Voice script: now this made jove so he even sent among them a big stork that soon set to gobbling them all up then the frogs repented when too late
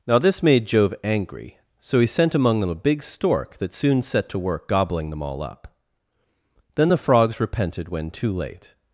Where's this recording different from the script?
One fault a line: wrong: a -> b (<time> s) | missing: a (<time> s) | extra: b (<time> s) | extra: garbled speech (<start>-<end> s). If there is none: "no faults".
extra: angry (1.0 s)
missing: even (2.1 s)
extra: work (4.4 s)